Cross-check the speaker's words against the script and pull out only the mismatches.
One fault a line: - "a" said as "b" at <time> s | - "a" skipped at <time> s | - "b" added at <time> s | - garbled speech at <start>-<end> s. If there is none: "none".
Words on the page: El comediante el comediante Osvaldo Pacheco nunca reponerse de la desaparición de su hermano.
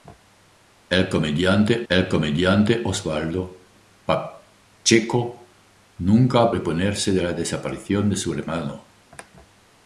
none